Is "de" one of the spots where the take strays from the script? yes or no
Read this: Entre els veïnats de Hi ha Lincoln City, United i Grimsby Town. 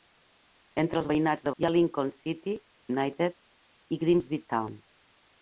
no